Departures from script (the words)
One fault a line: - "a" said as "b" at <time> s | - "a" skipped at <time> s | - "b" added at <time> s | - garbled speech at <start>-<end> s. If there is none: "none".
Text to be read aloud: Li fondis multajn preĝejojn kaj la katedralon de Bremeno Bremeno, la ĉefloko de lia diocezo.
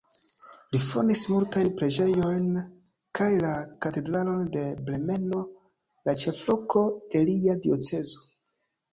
- "Bremeno" skipped at 5.4 s